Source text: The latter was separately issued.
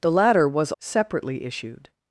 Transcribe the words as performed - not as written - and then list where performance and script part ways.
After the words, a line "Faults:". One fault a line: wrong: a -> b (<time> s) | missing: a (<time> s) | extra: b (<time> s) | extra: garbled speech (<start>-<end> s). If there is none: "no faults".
The latter was separately issued.
Faults:
no faults